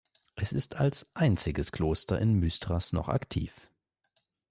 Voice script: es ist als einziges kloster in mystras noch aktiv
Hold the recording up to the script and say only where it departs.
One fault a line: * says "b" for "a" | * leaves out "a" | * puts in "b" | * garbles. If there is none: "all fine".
all fine